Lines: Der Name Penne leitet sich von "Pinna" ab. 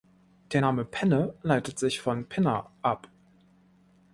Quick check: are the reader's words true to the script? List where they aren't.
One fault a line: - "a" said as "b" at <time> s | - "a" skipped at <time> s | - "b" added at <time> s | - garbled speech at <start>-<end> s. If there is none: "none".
none